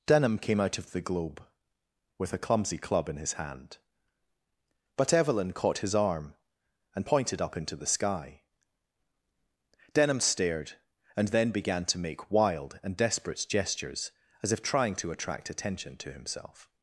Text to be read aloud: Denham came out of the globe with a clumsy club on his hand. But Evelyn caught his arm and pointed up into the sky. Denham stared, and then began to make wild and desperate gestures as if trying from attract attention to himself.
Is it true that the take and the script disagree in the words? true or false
true